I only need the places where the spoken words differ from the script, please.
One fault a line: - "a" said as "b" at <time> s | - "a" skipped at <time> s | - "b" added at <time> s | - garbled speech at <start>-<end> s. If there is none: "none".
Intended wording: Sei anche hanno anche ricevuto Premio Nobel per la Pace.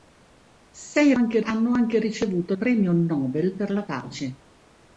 none